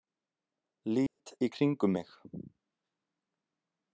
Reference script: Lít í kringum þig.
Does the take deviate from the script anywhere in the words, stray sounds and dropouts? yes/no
yes